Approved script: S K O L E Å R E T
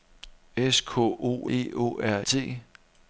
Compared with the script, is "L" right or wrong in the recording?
wrong